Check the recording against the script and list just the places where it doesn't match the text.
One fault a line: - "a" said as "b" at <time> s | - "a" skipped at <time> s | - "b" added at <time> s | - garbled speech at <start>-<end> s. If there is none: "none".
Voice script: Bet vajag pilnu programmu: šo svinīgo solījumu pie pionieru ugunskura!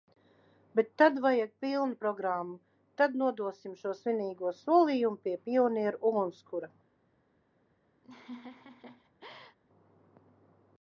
- "tad" added at 1.0 s
- "tad nodosim" added at 3.0 s